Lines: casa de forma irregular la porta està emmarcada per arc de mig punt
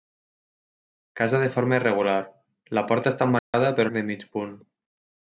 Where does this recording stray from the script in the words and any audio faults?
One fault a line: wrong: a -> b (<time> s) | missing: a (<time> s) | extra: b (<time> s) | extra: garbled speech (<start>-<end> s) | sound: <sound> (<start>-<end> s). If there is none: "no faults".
sound: dropout (3.4-3.5 s)